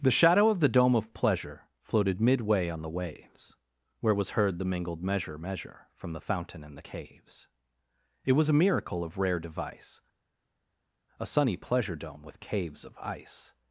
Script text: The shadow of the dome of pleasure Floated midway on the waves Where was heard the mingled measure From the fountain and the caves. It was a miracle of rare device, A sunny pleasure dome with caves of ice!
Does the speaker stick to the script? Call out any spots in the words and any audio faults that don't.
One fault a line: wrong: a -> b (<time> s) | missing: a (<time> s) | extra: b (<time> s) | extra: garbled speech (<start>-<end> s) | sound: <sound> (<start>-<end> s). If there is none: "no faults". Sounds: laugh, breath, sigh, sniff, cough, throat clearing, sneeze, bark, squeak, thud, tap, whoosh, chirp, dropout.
extra: measure (5.4 s)